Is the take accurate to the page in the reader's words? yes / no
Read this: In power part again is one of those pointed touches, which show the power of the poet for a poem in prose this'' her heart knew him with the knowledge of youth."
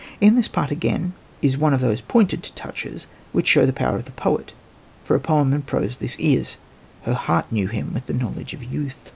no